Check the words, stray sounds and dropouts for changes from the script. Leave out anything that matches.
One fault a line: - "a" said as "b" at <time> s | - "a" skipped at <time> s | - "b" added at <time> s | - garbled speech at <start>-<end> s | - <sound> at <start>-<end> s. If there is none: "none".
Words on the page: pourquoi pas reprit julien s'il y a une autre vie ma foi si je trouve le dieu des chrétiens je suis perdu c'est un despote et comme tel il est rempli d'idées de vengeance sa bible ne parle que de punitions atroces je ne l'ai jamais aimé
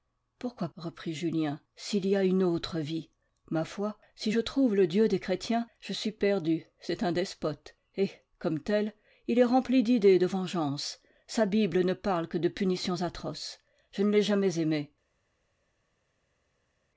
- "pas" skipped at 0.7 s